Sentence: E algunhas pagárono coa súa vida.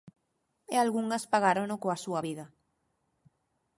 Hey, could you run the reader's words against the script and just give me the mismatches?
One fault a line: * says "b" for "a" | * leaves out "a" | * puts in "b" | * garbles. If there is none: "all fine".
all fine